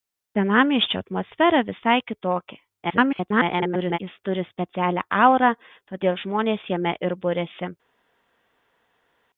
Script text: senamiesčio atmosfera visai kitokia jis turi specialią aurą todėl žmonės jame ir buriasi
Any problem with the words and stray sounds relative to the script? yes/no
yes